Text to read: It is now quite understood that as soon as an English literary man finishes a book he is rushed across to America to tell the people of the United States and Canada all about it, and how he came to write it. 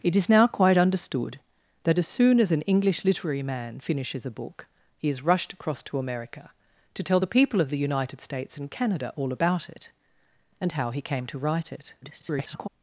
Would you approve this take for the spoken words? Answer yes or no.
no